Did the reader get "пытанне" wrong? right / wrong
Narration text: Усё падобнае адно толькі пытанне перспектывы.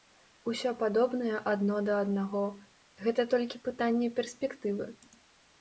right